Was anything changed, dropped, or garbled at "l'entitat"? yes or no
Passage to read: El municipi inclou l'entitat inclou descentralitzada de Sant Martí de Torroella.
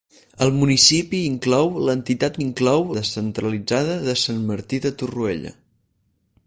no